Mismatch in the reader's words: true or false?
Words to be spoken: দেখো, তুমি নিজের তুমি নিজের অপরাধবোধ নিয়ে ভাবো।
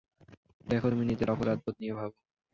true